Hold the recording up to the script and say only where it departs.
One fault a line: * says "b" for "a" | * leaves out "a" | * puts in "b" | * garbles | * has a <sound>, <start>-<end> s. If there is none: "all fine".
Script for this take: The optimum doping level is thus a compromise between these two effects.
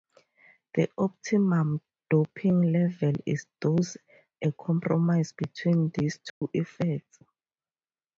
* has a dropout, 6.3-6.4 s